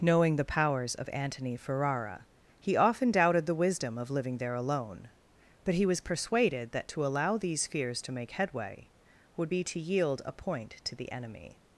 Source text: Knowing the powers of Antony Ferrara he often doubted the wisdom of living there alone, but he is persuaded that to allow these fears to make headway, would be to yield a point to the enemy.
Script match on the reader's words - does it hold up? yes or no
no